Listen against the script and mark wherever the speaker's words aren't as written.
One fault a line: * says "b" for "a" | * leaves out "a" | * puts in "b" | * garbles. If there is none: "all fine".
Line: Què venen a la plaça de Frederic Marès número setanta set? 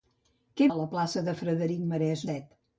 * leaves out "venen"
* leaves out "número setanta"